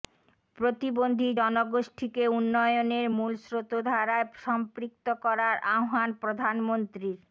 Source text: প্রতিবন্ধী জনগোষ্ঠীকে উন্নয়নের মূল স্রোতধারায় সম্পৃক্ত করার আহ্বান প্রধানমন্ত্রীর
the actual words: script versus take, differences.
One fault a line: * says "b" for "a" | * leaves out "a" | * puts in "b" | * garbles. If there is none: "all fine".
all fine